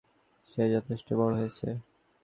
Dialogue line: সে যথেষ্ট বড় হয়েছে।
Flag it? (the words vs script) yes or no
no